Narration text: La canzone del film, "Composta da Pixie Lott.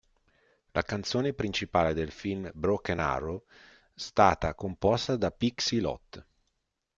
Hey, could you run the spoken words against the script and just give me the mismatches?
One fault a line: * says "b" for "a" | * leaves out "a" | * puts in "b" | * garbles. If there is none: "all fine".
* puts in "principale"
* puts in "Broken Arrow stata"